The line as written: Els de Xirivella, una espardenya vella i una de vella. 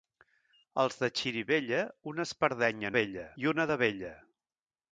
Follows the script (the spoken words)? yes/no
yes